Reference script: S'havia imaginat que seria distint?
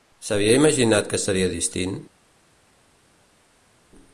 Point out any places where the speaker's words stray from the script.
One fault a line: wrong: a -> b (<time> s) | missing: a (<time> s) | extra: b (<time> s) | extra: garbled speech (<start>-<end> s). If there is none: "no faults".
no faults